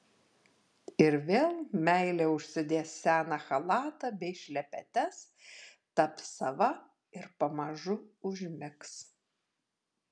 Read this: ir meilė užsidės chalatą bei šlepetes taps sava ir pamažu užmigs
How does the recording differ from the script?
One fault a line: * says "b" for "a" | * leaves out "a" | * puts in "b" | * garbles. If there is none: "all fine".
* puts in "vėl"
* puts in "seną"